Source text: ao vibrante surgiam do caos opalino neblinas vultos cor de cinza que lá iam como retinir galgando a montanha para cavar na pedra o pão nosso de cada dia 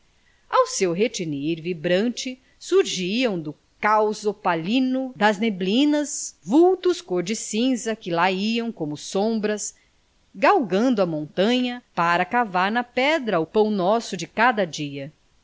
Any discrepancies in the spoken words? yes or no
yes